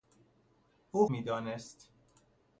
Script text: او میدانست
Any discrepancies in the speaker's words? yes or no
no